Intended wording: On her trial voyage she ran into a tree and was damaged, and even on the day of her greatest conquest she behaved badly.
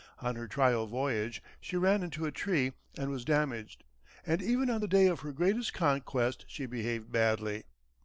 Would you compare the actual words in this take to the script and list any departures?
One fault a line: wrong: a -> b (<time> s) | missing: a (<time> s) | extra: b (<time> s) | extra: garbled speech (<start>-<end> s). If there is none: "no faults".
no faults